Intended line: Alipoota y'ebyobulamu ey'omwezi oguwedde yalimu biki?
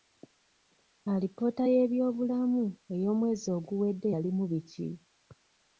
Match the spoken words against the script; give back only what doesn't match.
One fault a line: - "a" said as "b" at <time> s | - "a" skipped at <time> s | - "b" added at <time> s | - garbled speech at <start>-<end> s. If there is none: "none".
none